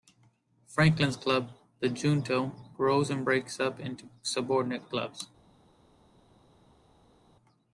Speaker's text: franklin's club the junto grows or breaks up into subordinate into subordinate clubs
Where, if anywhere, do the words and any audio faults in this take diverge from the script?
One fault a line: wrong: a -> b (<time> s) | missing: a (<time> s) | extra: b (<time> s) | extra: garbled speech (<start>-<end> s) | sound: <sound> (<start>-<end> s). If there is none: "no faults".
wrong: or -> and (3.1 s)
missing: into subordinate (4.9 s)